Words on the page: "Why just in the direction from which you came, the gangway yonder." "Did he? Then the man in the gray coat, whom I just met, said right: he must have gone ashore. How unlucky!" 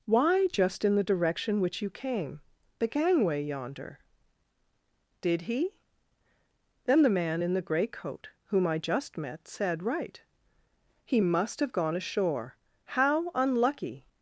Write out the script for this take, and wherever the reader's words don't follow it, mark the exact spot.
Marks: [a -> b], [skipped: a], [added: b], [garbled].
"Why just in the direction [skipped: from] which you came, the gangway yonder." "Did he? Then the man in the gray coat, whom I just met, said right: he must have gone ashore. How unlucky!"